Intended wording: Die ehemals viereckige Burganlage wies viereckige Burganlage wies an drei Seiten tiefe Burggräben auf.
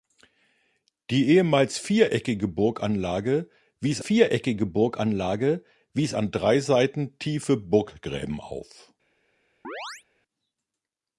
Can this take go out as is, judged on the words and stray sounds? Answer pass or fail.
fail